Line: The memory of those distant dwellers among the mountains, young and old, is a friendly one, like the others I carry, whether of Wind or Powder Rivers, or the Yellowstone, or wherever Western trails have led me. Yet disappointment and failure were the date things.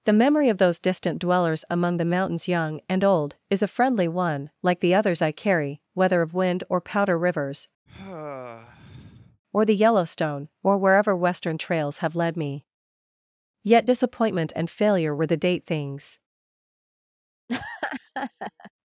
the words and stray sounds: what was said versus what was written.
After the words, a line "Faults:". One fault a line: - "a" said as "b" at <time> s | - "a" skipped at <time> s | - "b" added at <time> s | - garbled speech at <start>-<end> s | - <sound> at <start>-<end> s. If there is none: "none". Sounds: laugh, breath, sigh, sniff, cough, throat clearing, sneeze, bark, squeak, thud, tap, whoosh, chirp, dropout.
The memory of those distant dwellers among the mountains, young and old, is a friendly one, like the others I carry, whether of Wind or Powder Rivers, or the Yellowstone, or wherever Western trails have led me. Yet disappointment and failure were the date things.
Faults:
- sigh at 7.9-9.4 s
- laugh at 17.5-18.7 s